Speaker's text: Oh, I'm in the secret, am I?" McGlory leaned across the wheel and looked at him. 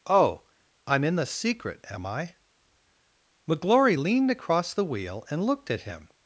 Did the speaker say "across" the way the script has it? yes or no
yes